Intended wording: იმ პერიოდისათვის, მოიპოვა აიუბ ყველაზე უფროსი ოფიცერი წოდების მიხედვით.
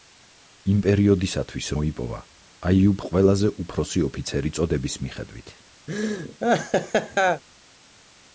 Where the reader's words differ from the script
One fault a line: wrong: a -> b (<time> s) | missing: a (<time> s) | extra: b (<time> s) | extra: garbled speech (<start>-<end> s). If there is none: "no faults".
no faults